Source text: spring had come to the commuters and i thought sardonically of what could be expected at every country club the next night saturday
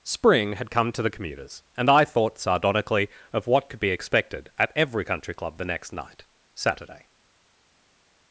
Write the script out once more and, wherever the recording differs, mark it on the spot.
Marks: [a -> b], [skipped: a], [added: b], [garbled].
spring had come to the commuters and i thought sardonically of what could be expected at every country club the next night saturday